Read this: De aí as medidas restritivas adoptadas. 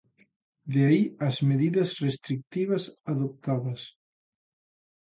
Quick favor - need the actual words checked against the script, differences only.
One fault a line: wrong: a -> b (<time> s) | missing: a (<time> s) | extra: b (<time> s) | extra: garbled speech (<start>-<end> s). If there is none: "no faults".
no faults